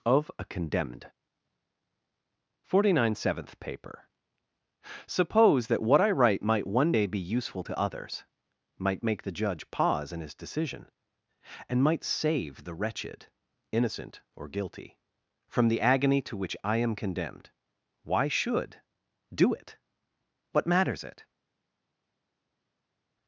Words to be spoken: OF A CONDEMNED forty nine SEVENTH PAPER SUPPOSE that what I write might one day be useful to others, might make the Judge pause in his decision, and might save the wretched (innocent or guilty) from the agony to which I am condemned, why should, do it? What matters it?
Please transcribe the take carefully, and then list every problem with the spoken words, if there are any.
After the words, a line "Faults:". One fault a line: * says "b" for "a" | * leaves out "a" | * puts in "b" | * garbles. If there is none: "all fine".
OF A CONDEMNED forty nine SEVENTH PAPER SUPPOSE that what I write might one day be useful to others, might make the Judge pause in his decision, and might save the wretched (innocent or guilty) from the agony to which I am condemned, why should, do it? What matters it?
Faults:
all fine